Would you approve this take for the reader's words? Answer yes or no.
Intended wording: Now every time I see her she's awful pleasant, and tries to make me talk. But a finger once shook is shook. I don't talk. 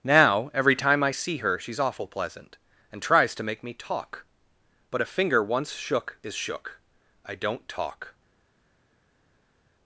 yes